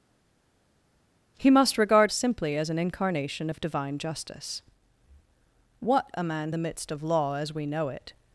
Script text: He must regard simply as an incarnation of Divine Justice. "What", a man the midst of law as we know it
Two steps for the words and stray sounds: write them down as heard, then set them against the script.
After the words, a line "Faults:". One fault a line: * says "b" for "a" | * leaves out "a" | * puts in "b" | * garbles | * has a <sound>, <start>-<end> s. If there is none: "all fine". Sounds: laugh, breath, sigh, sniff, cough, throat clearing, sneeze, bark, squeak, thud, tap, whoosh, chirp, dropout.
He must regard simply as an incarnation of Divine Justice. "What", a man the midst of law as we know it
Faults:
all fine